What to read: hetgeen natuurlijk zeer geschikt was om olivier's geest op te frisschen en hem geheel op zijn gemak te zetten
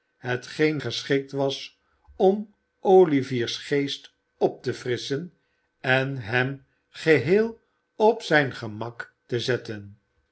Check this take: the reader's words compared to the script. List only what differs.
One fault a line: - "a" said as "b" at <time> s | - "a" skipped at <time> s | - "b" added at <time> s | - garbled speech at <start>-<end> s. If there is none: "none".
- "natuurlijk zeer" skipped at 0.8 s